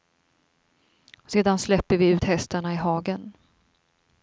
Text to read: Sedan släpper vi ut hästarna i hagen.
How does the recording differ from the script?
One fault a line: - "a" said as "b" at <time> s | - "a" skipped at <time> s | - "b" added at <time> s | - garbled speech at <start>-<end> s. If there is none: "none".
none